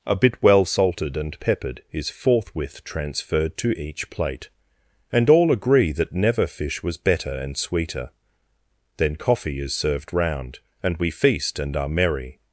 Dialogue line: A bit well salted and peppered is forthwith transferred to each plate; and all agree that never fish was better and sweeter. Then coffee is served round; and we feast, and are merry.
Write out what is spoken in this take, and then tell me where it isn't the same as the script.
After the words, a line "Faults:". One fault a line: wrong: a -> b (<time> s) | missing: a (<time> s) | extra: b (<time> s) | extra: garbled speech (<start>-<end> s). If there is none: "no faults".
A bit well salted and peppered is forthwith transferred to each plate; and all agree that never fish was better and sweeter. Then coffee is served round; and we feast, and are merry.
Faults:
no faults